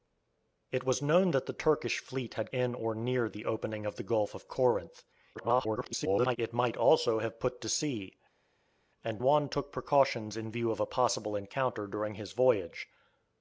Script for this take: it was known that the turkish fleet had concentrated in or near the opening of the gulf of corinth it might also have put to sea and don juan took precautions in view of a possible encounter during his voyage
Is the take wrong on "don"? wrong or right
wrong